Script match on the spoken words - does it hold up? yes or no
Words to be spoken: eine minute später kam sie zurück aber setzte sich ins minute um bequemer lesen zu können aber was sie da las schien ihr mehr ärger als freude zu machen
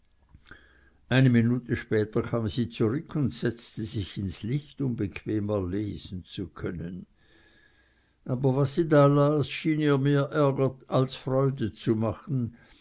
no